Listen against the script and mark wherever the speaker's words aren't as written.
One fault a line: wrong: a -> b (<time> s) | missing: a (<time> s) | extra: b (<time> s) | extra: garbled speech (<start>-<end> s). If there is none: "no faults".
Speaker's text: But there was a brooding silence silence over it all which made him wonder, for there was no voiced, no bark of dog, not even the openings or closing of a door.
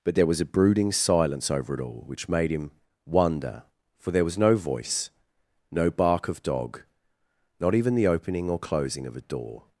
missing: silence (1.5 s)
wrong: voiced -> voice (4.5 s)
wrong: openings -> opening (8.1 s)